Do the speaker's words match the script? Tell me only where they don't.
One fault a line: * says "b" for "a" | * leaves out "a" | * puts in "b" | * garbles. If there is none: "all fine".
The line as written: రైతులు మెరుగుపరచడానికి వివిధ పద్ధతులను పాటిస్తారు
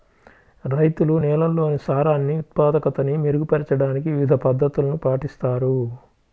* puts in "నేలల్లోని సారాన్ని ఉత్పాదకతని"